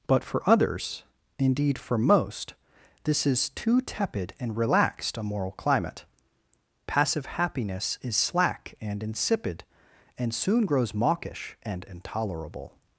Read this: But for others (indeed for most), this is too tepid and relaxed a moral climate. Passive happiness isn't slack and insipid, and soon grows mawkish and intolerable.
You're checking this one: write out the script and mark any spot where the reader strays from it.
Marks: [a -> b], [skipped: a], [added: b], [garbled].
But for others (indeed for most), this is too tepid and relaxed a moral climate. Passive happiness [isn't -> is] slack and insipid, and soon grows mawkish and intolerable.